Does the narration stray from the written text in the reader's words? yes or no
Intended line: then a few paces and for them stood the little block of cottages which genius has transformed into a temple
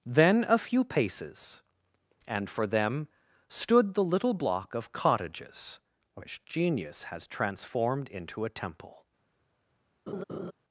no